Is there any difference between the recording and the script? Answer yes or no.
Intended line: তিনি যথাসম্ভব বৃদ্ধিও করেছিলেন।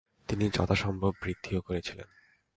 no